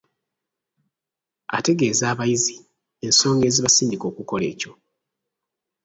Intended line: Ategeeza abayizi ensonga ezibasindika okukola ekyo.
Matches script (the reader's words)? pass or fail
pass